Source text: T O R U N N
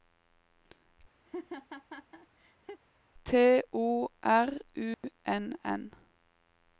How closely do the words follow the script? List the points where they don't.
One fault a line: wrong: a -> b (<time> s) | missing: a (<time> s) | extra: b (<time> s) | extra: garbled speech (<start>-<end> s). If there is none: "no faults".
no faults